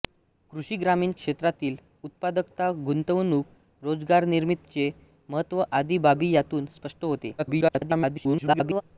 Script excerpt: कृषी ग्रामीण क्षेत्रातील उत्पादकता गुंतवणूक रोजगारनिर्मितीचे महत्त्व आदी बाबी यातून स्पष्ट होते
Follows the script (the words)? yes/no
no